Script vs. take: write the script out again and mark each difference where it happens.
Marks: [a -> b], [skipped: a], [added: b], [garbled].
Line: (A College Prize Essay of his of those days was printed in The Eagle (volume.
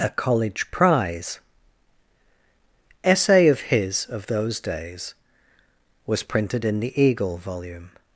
(A College Prize Essay of his of those days was printed in The Eagle (volume.